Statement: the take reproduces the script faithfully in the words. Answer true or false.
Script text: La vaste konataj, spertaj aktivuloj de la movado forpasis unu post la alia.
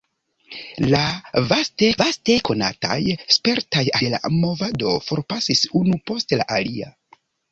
false